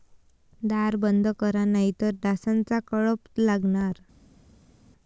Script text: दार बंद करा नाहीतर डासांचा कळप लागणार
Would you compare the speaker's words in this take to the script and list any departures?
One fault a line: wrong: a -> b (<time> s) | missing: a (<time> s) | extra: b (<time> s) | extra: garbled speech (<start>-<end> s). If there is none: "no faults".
no faults